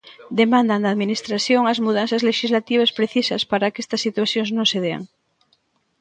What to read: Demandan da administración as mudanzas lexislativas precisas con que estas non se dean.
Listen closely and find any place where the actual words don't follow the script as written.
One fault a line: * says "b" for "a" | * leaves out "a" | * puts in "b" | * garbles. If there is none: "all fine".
* says "para" for "con"
* puts in "situacións"